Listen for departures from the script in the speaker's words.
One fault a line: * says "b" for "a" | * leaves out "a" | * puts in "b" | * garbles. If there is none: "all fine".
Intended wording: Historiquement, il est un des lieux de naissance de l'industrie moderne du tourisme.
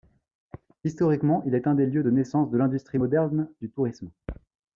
all fine